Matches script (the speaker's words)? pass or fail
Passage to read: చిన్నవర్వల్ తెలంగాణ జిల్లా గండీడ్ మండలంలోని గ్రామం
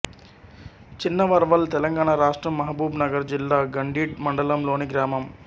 fail